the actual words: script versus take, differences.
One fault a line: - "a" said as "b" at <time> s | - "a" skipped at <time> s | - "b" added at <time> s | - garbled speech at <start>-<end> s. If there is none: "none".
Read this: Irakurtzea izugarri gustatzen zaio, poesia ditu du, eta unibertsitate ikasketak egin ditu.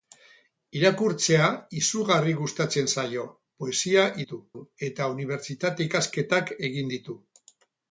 none